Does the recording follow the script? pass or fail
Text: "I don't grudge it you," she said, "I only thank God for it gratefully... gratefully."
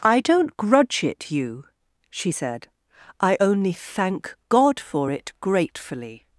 fail